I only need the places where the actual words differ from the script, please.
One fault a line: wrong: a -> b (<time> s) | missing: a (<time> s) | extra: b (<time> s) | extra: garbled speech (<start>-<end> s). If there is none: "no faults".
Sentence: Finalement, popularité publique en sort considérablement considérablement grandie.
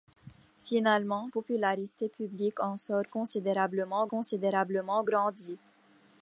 no faults